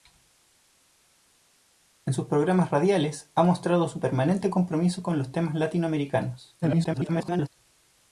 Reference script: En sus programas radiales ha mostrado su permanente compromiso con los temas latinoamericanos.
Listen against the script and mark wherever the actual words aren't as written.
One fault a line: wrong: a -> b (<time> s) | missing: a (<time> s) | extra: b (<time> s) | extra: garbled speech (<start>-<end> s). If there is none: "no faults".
extra: garbled speech (6.6-7.5 s)